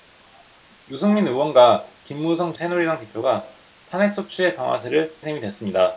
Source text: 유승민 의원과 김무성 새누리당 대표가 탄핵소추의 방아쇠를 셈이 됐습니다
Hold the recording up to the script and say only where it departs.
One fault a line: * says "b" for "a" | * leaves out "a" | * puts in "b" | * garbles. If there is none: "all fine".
all fine